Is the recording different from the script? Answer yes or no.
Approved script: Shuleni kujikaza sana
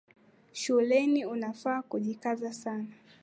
yes